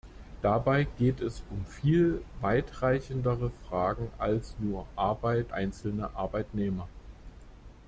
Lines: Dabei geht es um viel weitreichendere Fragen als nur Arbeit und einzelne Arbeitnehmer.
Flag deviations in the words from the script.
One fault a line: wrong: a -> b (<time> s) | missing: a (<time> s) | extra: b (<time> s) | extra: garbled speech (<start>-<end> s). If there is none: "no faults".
missing: und (5.5 s)